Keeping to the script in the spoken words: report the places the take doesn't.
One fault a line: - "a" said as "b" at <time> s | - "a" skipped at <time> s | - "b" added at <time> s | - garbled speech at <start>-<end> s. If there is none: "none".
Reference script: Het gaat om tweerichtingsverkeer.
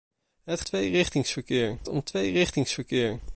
- "gaat" said as "tweerichtingsverkeer" at 0.6 s